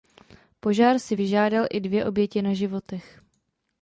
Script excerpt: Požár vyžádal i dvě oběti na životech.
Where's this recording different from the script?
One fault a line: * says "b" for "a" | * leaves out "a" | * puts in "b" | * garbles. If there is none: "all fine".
* puts in "si"